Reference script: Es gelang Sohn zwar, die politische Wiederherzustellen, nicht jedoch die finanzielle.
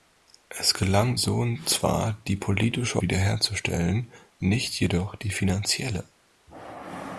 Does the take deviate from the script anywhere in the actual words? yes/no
no